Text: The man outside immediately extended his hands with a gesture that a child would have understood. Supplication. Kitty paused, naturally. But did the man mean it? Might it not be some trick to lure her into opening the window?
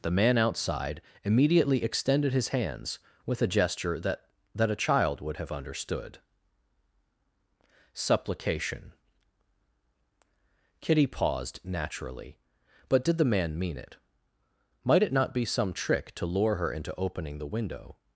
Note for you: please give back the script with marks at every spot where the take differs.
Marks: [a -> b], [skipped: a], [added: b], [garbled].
The man outside immediately extended his hands with a gesture that [added: that] a child would have understood. Supplication. Kitty paused, naturally. But did the man mean it? Might it not be some trick to lure her into opening the window?